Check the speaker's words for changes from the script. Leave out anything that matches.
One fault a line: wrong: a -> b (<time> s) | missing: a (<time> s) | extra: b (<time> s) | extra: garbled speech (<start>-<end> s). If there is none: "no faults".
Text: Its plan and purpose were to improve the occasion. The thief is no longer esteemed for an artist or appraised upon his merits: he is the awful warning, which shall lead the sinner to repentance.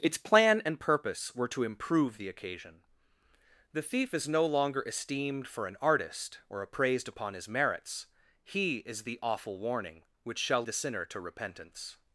missing: lead (10.6 s)